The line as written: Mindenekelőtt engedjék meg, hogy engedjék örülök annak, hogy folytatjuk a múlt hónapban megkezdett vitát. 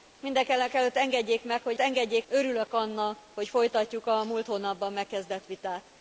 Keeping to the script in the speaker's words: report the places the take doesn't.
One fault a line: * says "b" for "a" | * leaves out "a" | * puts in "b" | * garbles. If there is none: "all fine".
all fine